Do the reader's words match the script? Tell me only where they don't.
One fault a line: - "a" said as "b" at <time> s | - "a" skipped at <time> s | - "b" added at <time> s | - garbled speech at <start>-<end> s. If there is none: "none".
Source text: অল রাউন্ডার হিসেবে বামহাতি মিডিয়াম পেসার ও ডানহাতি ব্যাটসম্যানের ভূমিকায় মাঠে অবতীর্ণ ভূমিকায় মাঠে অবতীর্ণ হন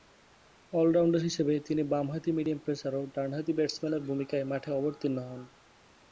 - "তিনি" added at 1.6 s
- "ভূমিকায় মাঠে অবতীর্ণ" skipped at 5.2 s